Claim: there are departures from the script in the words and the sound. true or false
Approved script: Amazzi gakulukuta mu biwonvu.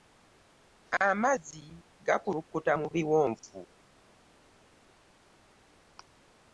false